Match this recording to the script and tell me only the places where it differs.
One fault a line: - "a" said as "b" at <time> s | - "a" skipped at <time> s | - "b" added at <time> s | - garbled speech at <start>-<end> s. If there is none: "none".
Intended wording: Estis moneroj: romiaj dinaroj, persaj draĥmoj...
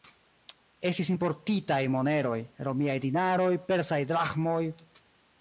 - "importitaj" added at 1.1 s